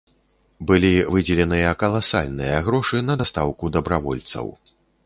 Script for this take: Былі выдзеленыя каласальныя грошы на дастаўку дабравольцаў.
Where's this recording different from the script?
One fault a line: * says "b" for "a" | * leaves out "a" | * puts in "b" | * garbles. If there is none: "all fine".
all fine